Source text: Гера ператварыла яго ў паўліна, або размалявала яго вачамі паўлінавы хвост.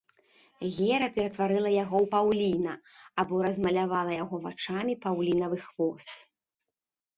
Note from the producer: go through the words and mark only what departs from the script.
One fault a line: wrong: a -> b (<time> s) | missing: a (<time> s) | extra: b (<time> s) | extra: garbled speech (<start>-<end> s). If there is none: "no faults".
no faults